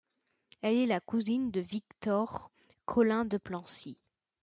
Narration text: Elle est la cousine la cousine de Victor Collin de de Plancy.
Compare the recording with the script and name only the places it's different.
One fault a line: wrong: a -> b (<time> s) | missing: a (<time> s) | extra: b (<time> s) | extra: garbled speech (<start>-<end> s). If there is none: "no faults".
missing: la cousine (1.5 s)
missing: de (3.4 s)